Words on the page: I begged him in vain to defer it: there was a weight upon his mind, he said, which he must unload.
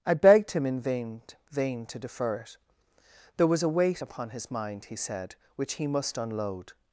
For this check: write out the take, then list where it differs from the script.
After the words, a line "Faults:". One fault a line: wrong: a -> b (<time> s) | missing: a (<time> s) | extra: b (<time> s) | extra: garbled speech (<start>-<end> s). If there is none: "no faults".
I begged him in vain vain to defer it: there was a weight upon his mind, he said, which he must unload.
Faults:
extra: vain (1.5 s)